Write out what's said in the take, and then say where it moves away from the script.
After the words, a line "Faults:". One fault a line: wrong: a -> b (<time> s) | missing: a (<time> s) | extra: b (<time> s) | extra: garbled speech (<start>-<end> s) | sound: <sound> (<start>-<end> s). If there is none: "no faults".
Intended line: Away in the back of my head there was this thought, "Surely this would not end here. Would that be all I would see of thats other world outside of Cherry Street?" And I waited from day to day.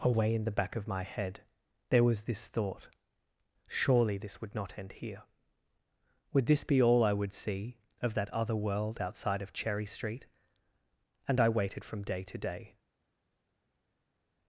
Away in the back of my head there was this thought, "Surely this would not end here. Would this be all I would see of that other world outside of Cherry Street?" And I waited from day to day.
Faults:
wrong: that -> this (6.5 s)
wrong: thats -> that (8.2 s)